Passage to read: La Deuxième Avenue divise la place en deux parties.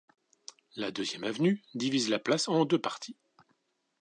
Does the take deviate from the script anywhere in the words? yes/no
no